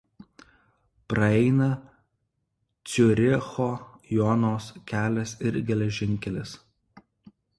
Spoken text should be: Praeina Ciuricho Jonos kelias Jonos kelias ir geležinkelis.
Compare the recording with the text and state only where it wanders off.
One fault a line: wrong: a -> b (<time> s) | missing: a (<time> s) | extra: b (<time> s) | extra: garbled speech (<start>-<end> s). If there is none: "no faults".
missing: Jonos kelias (5.3 s)